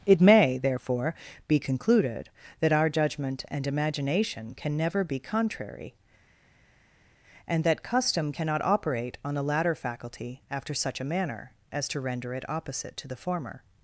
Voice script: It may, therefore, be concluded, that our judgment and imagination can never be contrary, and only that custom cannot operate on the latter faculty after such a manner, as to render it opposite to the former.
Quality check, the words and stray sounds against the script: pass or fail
fail